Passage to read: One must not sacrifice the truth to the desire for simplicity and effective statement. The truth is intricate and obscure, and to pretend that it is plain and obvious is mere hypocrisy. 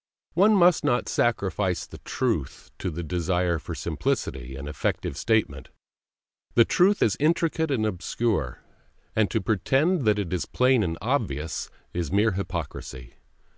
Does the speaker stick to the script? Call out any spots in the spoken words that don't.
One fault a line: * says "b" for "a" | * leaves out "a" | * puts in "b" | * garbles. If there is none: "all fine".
all fine